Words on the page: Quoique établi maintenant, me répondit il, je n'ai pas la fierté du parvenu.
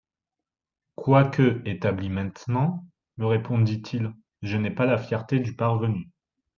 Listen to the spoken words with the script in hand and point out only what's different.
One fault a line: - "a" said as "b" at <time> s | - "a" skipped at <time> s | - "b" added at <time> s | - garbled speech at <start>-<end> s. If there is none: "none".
none